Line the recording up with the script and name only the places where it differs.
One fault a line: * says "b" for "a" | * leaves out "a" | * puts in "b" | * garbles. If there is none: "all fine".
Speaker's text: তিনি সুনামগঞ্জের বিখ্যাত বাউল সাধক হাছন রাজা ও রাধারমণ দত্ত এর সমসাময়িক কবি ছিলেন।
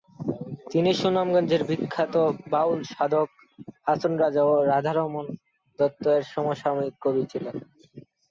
all fine